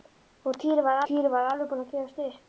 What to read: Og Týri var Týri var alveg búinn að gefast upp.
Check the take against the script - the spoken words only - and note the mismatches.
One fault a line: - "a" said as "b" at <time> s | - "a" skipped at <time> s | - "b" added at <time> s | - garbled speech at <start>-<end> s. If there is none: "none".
none